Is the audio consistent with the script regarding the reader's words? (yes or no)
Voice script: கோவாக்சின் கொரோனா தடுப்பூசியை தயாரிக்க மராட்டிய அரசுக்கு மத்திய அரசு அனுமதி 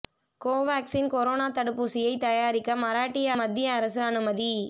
no